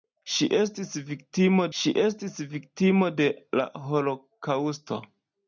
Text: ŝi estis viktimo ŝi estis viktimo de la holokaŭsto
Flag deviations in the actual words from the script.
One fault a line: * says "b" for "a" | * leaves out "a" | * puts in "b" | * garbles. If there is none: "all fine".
all fine